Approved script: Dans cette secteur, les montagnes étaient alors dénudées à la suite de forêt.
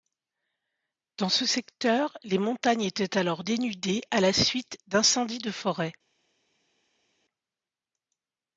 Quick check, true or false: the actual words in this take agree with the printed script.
false